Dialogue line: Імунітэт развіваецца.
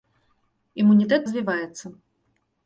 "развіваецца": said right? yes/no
yes